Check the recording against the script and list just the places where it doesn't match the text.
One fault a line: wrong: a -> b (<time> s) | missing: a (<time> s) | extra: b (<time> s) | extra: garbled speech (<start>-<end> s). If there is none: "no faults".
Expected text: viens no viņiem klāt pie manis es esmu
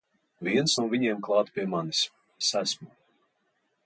no faults